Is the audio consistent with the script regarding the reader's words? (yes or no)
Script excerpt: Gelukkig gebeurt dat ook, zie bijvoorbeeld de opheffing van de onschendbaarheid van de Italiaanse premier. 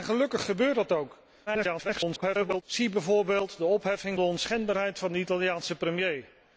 no